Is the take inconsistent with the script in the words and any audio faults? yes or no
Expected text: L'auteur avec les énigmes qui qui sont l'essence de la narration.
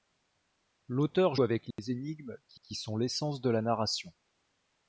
yes